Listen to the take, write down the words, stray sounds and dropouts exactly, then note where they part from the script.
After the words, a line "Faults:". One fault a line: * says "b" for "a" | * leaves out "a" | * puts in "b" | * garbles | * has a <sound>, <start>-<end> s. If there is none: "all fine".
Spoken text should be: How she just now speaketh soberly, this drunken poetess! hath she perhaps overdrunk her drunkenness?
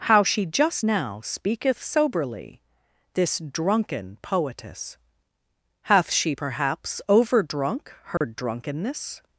How she just now speaketh soberly, this drunken poetess! hath she perhaps overdrunk her drunkenness?
Faults:
* has a dropout, 8.2-8.2 s